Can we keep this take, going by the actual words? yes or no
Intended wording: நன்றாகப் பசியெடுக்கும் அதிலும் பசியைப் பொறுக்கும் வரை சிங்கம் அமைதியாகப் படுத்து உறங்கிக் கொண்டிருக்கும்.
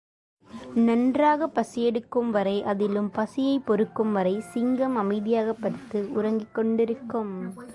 no